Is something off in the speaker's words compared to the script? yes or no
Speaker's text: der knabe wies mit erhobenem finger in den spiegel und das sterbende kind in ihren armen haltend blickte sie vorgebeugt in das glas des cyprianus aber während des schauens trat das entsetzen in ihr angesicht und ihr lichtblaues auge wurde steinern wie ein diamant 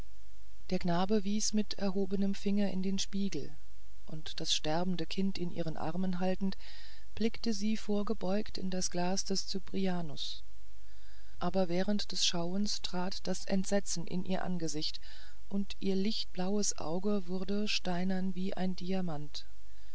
no